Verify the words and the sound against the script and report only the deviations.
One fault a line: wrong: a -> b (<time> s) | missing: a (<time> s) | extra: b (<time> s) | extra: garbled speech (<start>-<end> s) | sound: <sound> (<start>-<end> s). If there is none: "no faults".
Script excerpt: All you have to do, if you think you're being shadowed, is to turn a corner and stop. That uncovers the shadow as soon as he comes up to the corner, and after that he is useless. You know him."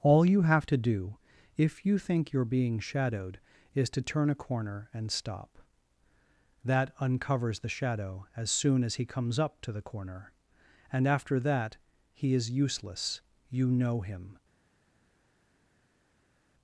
no faults